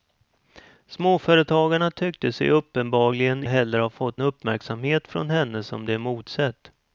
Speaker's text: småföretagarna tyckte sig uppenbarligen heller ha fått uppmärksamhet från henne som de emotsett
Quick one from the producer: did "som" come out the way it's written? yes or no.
yes